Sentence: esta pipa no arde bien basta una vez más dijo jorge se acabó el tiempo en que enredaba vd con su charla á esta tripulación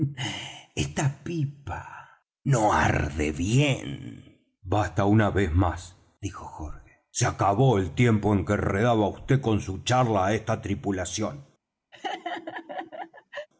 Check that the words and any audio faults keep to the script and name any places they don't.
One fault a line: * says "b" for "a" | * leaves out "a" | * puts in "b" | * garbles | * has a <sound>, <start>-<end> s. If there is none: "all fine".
* has a laugh, 11.9-13.5 s